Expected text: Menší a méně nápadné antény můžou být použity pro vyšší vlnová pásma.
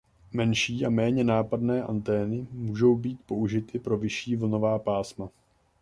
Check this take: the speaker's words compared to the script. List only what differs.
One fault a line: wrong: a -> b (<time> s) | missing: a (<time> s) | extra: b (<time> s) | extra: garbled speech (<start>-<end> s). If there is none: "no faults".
no faults